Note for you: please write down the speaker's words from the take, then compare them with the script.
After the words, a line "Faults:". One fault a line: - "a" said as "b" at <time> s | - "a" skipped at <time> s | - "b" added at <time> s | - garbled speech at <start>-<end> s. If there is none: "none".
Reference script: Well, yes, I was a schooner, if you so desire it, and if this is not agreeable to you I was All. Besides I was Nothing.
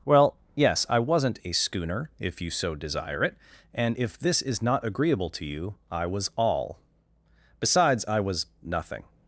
Well, yes, I wasn't a schooner, if you so desire it, and if this is not agreeable to you I was All. Besides I was Nothing.
Faults:
- "was" said as "wasn't" at 1.0 s